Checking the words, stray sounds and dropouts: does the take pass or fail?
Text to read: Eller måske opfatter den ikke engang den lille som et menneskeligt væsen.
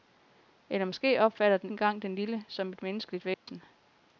fail